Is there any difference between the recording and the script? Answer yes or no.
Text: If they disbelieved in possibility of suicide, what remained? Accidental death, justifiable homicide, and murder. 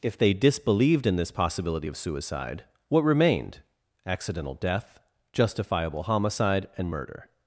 yes